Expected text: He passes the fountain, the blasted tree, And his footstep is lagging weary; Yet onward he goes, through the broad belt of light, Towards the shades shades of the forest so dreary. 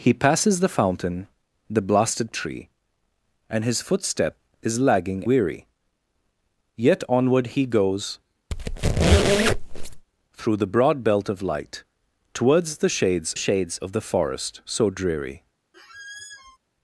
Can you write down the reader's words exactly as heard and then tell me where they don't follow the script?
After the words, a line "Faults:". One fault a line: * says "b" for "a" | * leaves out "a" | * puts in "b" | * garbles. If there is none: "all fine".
He passes the fountain, the blasted tree, And his footstep is lagging weary; Yet onward he goes, through the broad belt of light, Towards the shades shades of the forest so dreary.
Faults:
all fine